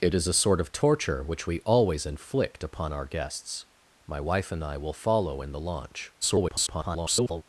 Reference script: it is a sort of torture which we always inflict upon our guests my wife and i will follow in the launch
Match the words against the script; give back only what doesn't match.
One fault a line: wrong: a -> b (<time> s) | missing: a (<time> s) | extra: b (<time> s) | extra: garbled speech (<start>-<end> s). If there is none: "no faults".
extra: garbled speech (6.2-7.4 s)